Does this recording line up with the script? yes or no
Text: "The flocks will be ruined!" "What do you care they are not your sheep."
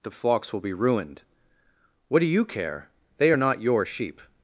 yes